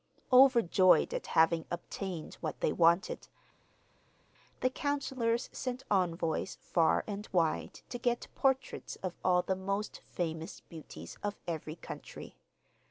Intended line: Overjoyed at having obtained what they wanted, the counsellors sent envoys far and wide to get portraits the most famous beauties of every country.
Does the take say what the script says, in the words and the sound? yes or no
no